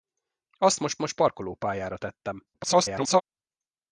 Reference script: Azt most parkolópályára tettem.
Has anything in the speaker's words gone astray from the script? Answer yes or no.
yes